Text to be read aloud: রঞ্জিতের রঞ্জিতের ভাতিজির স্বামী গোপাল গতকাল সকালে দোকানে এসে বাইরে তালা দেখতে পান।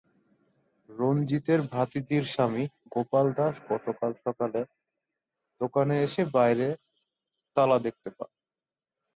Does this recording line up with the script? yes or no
no